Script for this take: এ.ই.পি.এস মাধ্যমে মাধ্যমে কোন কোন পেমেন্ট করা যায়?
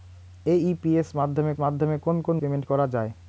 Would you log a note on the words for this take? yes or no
no